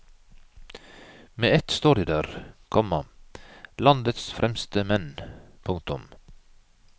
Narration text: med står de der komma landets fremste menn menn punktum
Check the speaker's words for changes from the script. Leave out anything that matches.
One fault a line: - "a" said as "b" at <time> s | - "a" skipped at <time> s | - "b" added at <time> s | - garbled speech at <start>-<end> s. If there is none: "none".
- "ett" added at 1.6 s
- "menn" skipped at 5.2 s